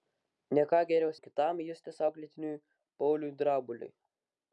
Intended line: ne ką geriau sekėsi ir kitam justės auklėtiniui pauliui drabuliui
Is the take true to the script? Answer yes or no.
no